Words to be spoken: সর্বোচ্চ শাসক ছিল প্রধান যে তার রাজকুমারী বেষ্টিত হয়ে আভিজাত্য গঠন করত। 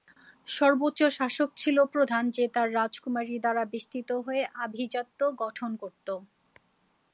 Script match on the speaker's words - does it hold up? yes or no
no